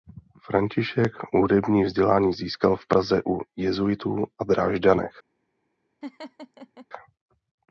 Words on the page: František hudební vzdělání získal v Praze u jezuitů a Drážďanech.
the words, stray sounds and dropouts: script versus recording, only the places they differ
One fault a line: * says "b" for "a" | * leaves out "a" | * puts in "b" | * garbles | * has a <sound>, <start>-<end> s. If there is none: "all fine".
* has a laugh, 6.0-6.9 s